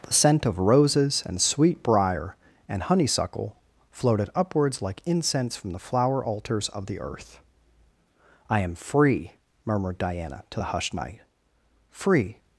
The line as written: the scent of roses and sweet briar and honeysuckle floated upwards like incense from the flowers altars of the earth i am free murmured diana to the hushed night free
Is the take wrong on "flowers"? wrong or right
wrong